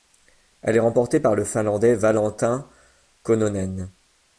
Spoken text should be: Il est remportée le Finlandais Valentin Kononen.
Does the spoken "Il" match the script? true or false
false